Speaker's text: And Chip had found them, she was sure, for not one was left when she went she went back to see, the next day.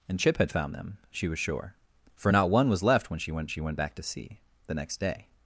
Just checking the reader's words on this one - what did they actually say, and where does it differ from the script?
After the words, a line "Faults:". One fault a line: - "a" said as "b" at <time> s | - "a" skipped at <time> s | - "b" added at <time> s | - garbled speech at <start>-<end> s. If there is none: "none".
And Chip had found them, she was sure, for not one was left when she went she went back to see, the next day.
Faults:
none